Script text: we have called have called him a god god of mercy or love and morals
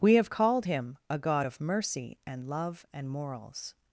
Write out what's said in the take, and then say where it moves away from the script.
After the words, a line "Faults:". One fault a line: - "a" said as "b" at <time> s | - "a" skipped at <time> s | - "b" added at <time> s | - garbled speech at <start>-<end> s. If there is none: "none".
we have called him a god of mercy and love and morals
Faults:
- "have called" skipped at 0.7 s
- "god" skipped at 1.5 s
- "or" said as "and" at 2.3 s